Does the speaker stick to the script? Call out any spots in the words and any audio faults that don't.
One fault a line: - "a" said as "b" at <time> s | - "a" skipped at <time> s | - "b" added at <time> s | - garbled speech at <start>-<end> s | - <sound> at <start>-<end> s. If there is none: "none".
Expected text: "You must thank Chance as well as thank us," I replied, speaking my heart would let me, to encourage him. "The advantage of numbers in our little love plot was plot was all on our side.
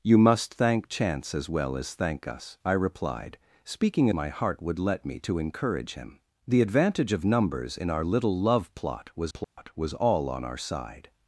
- dropout at 9.4-9.6 s